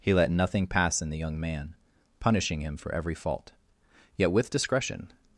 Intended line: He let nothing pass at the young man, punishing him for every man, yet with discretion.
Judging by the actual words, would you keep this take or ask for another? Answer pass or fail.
fail